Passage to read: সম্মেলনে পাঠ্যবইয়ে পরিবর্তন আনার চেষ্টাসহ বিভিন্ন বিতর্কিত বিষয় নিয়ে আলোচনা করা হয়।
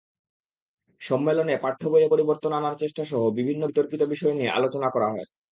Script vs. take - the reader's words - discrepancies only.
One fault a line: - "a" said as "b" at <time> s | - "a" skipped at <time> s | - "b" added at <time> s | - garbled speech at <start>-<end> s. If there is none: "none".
none